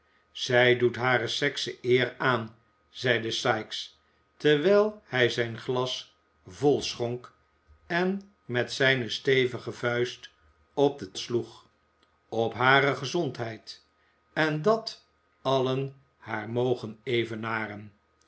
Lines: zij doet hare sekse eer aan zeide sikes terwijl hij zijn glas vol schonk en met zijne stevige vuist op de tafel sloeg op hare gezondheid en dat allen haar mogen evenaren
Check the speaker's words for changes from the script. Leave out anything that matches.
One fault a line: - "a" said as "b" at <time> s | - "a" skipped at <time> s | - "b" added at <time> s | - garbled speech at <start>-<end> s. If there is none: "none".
- "tafel" skipped at 11.1 s